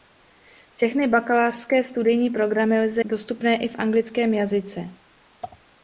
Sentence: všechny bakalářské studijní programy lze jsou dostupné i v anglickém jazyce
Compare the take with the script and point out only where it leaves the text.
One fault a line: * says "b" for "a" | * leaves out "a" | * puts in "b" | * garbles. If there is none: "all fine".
* leaves out "jsou"